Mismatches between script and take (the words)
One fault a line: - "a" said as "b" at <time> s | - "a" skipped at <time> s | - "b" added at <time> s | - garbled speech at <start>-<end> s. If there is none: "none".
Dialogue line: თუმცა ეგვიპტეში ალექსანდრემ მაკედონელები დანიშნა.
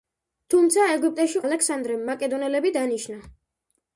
none